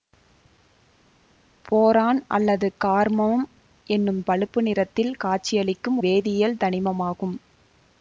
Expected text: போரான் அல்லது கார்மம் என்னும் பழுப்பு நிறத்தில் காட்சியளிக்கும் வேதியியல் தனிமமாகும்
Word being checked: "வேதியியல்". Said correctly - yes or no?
yes